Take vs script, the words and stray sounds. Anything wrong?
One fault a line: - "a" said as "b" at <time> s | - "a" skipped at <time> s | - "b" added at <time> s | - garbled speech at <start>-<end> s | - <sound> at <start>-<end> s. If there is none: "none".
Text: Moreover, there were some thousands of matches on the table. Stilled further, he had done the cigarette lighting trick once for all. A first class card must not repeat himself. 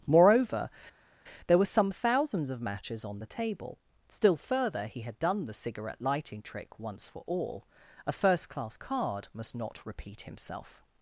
- "Stilled" said as "Still" at 4.1 s